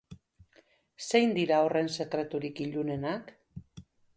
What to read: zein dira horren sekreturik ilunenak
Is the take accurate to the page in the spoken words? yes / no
yes